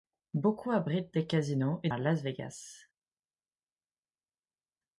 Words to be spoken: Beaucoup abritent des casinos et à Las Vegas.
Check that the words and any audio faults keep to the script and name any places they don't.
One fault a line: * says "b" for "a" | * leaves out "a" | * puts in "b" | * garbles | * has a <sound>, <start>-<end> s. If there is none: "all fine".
all fine